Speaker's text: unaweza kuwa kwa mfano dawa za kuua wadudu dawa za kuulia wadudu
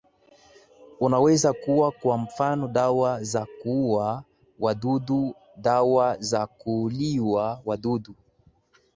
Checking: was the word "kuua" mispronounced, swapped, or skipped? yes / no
no